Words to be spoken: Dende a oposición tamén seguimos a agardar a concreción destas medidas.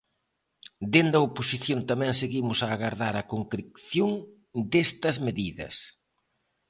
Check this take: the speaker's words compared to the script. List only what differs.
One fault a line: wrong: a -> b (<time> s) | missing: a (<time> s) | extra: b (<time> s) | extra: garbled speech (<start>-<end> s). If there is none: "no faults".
no faults